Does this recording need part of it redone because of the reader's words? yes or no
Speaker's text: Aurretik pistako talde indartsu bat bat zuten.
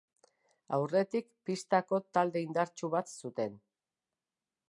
yes